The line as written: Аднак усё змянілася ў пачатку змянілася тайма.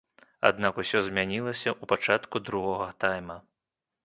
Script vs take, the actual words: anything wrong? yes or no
yes